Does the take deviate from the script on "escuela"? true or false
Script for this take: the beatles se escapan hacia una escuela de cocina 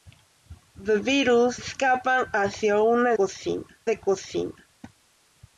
true